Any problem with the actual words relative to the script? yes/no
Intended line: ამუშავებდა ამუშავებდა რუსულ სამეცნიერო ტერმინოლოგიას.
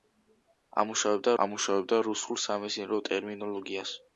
no